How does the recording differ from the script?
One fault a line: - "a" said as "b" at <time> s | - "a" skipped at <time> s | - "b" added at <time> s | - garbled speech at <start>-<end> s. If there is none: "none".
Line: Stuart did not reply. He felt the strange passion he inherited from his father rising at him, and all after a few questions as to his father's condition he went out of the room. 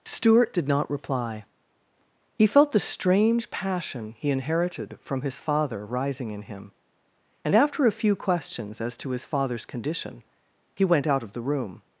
- "at" said as "in" at 6.3 s
- "all" skipped at 7.5 s